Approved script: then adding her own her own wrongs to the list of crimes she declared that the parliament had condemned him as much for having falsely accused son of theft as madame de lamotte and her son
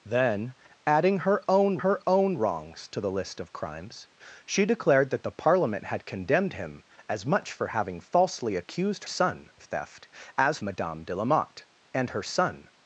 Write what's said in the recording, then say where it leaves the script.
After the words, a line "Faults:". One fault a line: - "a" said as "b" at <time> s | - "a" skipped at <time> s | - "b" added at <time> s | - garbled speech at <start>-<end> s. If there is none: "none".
then adding her own her own wrongs to the list of crimes she declared that the parliament had condemned him as much for having falsely accused son of theft as madame de lamotte and her son
Faults:
none